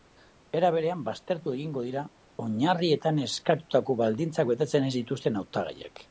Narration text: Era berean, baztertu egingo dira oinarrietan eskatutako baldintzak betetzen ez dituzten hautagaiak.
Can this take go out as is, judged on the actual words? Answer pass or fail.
pass